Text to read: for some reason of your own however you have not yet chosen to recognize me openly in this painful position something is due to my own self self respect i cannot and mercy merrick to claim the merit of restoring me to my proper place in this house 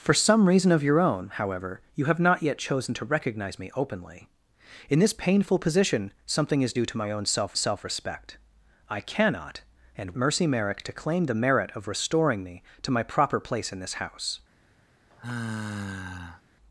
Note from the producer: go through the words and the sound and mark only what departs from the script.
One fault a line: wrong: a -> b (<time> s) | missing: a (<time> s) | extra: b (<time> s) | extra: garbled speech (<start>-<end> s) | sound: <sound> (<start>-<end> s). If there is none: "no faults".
sound: sigh (15.1-16.4 s)